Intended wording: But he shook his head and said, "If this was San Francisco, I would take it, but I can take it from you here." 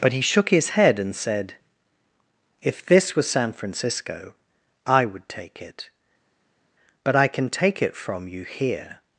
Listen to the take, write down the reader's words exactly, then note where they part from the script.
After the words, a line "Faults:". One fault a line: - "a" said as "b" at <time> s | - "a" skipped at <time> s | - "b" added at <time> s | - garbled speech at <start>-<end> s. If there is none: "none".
But he shook his head and said, "If this was San Francisco, I would take it, but I can take it from you here."
Faults:
none